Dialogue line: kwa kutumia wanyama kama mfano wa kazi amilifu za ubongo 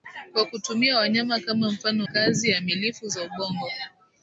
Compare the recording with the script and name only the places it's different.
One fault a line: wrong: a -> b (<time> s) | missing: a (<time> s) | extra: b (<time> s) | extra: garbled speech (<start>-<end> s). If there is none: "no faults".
missing: wa (2.1 s)